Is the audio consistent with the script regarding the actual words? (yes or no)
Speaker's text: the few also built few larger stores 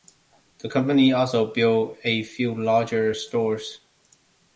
no